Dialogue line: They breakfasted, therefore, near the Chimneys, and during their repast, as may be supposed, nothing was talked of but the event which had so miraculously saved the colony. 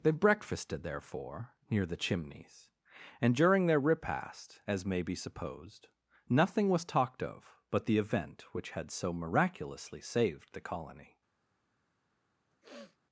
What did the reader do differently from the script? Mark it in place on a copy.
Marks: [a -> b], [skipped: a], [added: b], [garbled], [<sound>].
They breakfasted, therefore, near the Chimneys, and during their repast, as may be supposed, nothing was talked of but the event which had so miraculously saved the colony. [sniff]